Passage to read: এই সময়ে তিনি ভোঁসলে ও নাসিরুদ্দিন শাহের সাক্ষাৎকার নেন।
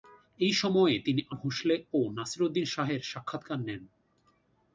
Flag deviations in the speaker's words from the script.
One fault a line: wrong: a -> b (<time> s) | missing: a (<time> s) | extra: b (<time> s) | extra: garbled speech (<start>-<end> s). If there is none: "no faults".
no faults